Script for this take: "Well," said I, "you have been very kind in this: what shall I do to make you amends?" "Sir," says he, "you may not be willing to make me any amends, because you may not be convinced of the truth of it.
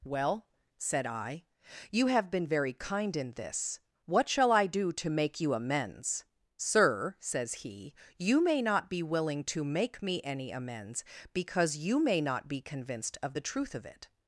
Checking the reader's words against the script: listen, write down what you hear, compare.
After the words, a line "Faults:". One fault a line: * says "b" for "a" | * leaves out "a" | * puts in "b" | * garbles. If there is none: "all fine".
"Well," said I, "you have been very kind in this: what shall I do to make you amends?" "Sir," says he, "you may not be willing to make me any amends, because you may not be convinced of the truth of it.
Faults:
all fine